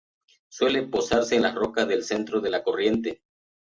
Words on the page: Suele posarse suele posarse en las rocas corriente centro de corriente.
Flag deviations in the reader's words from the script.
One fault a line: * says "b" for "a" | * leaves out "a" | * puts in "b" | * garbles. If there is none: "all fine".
* leaves out "suele posarse"
* says "del" for "corriente"
* puts in "la"